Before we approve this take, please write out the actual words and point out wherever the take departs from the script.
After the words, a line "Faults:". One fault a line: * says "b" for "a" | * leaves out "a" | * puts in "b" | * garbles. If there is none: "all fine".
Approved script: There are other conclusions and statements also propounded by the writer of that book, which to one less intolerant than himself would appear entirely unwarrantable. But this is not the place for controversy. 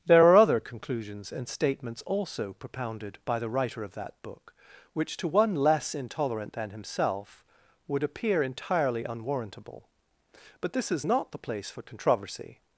There are other conclusions and statements also propounded by the writer of that book, which to one less intolerant than himself would appear entirely unwarrantable. But this is not the place for controversy.
Faults:
all fine